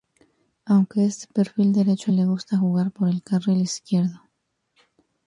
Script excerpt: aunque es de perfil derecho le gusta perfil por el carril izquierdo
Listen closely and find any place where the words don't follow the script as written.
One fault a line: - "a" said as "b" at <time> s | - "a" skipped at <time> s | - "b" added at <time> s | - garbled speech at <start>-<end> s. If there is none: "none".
- "perfil" said as "jugar" at 2.6 s